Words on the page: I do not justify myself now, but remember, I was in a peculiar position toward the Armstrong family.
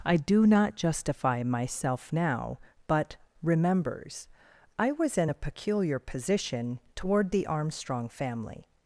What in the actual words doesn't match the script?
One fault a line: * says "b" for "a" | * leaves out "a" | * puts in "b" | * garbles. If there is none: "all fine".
* says "remembers" for "remember"